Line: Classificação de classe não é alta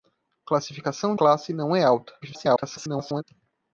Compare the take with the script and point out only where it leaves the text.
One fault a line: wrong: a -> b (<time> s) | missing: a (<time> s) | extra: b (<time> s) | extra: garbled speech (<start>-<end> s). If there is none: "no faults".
missing: de (1.1 s)
extra: garbled speech (2.2-3.2 s)